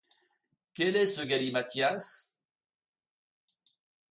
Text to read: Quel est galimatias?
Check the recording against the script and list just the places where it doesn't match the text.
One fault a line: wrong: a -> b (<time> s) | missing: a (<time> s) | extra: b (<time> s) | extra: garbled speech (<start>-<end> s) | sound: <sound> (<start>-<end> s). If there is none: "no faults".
extra: ce (1.1 s)